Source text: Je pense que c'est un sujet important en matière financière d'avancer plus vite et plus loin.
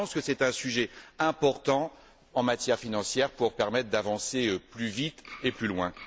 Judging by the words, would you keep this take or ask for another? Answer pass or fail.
fail